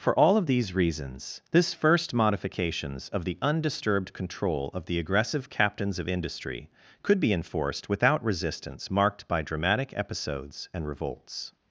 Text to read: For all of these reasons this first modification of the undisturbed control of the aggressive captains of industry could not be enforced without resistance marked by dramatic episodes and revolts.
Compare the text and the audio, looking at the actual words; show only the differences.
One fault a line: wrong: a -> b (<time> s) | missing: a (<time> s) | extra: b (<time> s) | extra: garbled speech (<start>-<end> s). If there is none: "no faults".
wrong: modification -> modifications (2.1 s)
missing: not (7.2 s)